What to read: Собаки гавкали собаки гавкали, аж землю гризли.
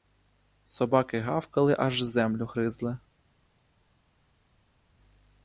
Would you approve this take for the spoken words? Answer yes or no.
no